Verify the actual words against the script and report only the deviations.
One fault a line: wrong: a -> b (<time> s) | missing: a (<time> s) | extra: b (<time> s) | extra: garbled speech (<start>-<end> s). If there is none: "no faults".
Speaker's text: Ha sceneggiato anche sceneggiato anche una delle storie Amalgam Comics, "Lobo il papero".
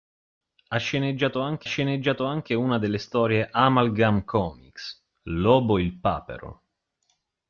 no faults